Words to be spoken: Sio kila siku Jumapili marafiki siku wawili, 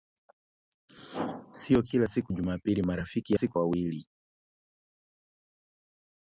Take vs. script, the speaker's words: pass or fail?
pass